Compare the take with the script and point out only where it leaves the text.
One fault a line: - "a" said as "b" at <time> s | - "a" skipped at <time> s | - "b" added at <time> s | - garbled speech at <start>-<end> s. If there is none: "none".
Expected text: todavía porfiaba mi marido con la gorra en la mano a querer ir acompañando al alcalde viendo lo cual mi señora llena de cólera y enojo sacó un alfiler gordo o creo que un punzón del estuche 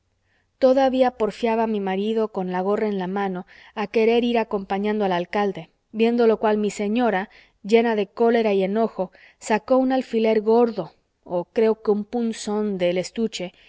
none